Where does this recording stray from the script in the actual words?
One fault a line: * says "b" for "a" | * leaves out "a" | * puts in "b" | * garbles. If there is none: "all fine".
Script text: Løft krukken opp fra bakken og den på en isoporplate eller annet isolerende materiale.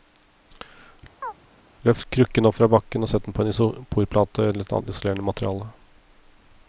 * puts in "sett"